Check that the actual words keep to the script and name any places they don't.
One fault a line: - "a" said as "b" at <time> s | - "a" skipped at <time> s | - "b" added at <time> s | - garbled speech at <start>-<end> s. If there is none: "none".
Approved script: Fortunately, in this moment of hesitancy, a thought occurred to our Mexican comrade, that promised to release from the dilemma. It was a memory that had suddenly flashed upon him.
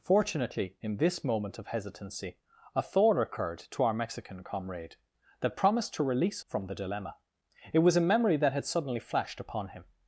none